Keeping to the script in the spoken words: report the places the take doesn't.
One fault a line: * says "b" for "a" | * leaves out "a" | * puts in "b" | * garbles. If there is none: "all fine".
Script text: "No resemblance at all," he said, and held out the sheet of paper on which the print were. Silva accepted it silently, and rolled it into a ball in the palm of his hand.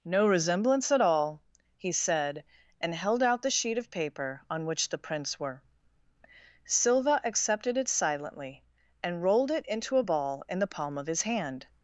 * says "prints" for "print"